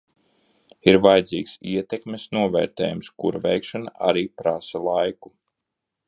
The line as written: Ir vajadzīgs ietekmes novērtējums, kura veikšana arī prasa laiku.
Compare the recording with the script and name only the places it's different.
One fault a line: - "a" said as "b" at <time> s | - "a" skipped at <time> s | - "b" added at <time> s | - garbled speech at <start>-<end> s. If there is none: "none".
none